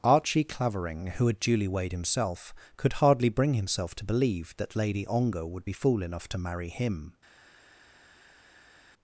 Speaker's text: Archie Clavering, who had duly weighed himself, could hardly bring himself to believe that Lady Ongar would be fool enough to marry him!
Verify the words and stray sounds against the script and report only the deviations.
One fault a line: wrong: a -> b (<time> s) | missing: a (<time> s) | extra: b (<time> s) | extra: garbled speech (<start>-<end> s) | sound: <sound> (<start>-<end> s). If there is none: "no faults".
no faults